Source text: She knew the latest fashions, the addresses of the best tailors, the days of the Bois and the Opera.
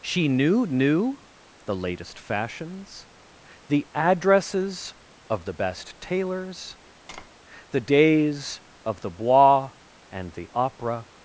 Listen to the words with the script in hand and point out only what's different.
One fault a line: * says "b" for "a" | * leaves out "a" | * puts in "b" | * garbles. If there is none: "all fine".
* puts in "knew"